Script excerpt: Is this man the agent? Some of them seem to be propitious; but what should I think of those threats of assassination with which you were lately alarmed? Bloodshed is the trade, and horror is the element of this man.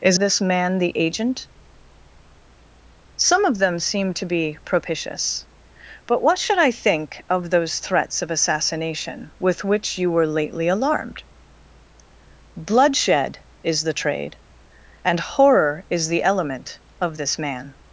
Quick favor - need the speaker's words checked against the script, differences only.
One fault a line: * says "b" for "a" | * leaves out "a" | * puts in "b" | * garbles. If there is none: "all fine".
all fine